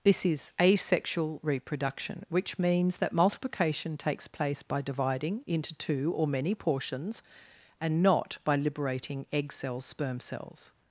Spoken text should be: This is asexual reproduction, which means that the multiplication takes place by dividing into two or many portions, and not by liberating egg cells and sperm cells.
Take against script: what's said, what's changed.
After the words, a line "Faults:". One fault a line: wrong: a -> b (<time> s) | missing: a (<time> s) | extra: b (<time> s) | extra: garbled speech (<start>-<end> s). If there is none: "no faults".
This is asexual reproduction, which means that multiplication takes place by dividing into two or many portions, and not by liberating egg cells sperm cells.
Faults:
missing: the (3.1 s)
missing: and (9.8 s)